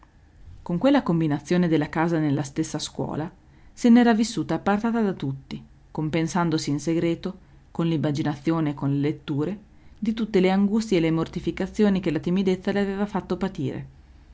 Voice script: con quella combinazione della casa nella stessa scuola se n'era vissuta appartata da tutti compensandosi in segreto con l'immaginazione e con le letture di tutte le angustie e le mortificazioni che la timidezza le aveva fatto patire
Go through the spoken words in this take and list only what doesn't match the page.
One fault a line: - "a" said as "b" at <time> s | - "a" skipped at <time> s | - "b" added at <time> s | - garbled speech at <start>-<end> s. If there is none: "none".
none